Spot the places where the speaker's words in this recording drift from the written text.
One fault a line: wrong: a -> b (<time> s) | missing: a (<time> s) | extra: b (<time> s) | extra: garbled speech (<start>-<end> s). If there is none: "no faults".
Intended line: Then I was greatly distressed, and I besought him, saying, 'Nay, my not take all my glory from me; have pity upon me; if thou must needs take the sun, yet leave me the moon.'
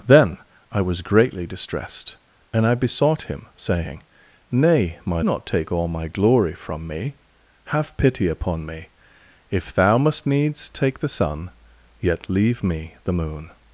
no faults